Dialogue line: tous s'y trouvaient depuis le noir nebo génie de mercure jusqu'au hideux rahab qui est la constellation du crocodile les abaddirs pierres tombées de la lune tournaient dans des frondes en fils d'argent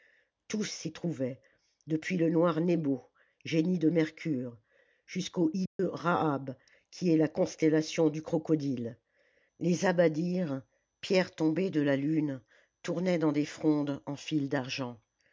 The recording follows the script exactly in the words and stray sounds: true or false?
false